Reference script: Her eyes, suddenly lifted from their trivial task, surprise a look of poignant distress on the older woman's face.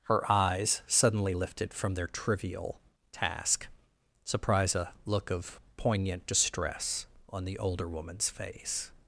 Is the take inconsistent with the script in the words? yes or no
no